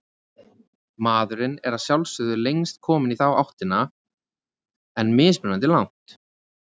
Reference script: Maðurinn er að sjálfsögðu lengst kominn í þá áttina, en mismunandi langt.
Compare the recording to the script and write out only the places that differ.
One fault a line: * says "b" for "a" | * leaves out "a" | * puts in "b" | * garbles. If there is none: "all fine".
all fine